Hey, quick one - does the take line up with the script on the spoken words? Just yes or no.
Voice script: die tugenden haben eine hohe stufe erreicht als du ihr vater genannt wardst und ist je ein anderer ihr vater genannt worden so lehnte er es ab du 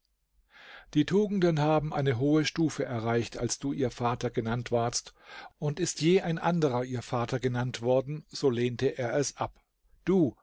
yes